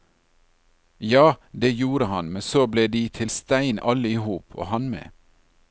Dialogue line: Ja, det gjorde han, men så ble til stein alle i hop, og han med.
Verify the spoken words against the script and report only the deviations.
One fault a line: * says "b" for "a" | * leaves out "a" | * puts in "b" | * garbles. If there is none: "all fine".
* puts in "de"